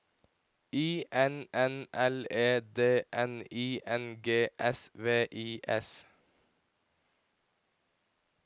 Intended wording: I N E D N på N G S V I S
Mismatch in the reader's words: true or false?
true